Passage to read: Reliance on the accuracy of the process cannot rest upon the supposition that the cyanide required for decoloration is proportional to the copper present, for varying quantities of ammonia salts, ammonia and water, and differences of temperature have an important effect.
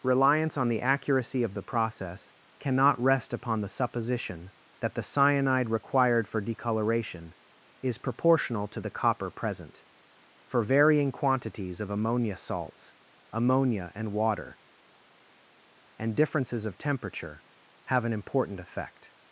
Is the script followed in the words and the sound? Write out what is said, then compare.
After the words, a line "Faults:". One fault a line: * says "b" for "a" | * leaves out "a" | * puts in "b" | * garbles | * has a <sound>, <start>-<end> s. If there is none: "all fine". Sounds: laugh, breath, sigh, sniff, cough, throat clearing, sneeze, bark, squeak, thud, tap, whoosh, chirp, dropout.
Reliance on the accuracy of the process cannot rest upon the supposition that the cyanide required for decoloration is proportional to the copper present, for varying quantities of ammonia salts, ammonia and water, and differences of temperature have an important effect.
Faults:
all fine